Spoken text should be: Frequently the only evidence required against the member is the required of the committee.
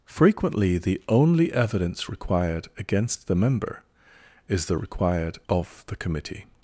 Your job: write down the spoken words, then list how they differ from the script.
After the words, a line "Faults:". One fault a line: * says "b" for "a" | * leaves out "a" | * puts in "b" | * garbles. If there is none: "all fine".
Frequently the only evidence required against the member is the required of the committee.
Faults:
all fine